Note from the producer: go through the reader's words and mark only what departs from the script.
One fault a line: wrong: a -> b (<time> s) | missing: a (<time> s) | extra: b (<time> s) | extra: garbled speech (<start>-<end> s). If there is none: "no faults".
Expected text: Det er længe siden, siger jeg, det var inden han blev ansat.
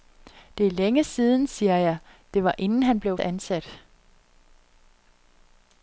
no faults